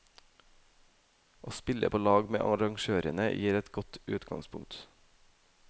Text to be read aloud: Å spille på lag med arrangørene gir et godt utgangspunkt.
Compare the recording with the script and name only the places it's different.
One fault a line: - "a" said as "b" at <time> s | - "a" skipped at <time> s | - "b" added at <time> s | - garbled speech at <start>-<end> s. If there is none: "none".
none